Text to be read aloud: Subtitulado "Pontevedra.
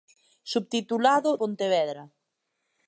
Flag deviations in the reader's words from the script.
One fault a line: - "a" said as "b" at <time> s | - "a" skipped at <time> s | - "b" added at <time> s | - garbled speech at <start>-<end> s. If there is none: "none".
none